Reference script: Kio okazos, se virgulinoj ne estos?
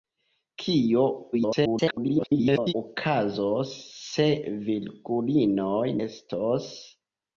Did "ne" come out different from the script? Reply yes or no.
yes